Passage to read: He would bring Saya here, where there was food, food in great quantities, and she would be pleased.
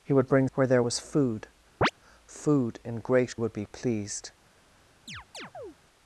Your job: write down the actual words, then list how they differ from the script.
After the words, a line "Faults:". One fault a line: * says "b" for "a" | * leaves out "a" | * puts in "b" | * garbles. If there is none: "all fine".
He would bring Where there was food, food in great would be pleased.
Faults:
* leaves out "Saya here"
* leaves out "quantities and she"